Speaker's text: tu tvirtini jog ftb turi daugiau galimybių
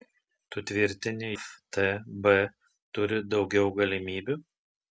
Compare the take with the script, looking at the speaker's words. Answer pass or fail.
fail